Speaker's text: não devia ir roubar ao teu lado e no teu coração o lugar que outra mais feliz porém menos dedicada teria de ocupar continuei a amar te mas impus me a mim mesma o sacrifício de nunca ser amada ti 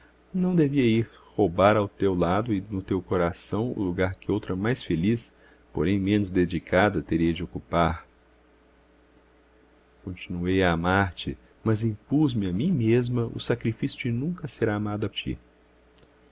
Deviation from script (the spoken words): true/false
false